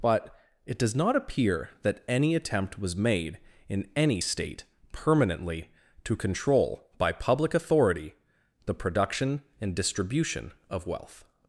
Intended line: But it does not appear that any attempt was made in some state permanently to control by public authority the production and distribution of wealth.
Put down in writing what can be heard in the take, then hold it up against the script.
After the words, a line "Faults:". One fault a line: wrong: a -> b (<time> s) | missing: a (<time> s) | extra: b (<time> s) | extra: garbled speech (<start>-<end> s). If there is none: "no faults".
But it does not appear that any attempt was made in any state permanently to control by public authority the production and distribution of wealth.
Faults:
wrong: some -> any (4.0 s)